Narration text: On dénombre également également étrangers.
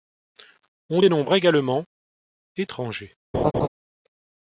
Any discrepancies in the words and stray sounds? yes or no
yes